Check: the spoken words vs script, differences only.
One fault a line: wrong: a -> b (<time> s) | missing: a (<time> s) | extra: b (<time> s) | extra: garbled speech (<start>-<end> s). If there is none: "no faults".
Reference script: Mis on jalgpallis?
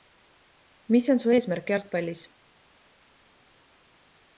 extra: su eesmärk (1.2 s)